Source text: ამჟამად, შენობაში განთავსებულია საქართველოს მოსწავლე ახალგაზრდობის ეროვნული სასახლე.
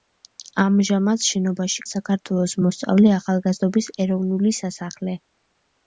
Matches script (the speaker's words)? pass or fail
fail